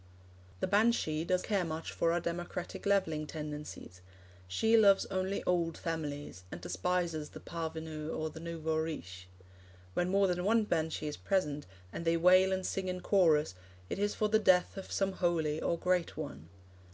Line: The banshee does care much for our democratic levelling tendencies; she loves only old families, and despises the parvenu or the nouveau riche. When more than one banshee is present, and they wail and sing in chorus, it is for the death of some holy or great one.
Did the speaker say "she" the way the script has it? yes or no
yes